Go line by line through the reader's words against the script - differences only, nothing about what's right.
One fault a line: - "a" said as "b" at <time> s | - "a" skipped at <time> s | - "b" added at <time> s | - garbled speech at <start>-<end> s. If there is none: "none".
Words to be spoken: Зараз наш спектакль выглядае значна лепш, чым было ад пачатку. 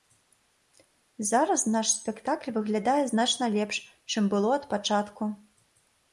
none